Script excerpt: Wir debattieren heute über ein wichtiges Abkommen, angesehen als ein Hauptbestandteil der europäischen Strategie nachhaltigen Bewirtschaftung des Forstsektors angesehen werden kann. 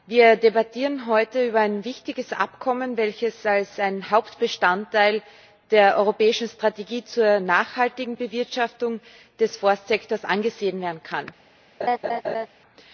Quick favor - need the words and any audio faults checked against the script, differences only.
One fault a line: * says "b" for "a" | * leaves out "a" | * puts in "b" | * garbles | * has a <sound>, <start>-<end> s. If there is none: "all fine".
* says "welches" for "angesehen"
* puts in "zur"
* has a laugh, 11.8-12.5 s